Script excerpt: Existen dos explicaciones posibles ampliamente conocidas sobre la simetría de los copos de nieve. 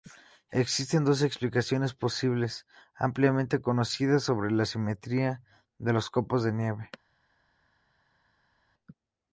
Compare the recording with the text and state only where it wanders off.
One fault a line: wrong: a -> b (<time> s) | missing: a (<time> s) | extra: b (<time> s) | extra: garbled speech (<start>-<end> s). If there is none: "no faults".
no faults